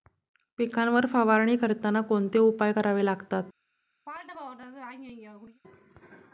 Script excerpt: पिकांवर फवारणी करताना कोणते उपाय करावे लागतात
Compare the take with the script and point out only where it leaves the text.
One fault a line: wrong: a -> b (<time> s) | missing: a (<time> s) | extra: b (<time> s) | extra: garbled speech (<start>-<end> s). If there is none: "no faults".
no faults